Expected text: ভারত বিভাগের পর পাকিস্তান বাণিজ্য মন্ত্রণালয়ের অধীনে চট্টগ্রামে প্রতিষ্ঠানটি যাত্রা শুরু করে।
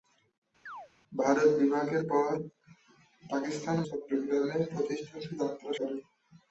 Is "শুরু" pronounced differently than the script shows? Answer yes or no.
yes